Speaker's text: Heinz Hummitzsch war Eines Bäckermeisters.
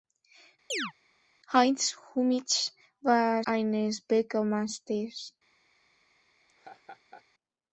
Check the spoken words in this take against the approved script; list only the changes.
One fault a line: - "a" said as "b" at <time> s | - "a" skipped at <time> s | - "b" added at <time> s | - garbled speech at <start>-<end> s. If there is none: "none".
none